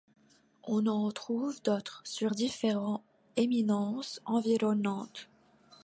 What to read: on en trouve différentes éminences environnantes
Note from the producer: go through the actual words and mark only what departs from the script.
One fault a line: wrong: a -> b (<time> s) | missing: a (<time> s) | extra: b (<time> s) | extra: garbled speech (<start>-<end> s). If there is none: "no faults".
extra: d'autres sur (1.6 s)